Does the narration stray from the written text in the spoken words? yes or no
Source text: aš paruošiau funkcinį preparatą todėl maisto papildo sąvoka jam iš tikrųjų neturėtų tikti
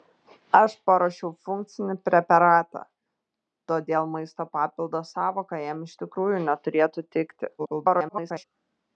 yes